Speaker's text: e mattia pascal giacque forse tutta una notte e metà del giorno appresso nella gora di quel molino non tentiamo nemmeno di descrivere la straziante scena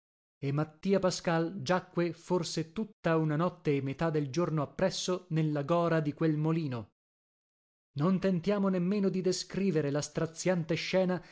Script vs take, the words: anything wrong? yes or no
no